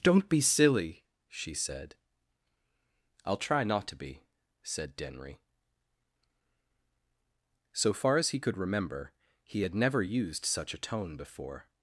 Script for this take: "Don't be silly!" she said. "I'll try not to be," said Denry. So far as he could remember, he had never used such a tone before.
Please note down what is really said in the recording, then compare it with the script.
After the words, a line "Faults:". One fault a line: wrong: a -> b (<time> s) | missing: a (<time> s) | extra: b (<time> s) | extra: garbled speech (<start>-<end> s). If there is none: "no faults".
"Don't be silly!" she said. "I'll try not to be," said Denry. So far as he could remember, he had never used such a tone before.
Faults:
no faults